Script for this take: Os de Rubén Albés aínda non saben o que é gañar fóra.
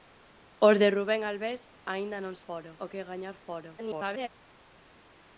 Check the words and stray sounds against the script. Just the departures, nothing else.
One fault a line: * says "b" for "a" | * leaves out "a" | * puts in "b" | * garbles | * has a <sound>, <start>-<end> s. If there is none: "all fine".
* says "fóra" for "saben"
* garbles